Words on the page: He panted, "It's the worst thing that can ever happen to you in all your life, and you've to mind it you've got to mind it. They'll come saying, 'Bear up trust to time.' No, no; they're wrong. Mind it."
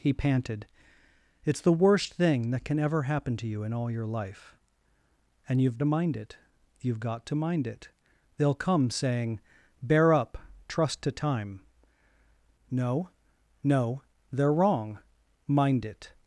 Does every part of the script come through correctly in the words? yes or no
yes